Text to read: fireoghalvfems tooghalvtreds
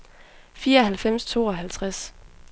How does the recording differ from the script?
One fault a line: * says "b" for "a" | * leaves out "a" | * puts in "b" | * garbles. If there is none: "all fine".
all fine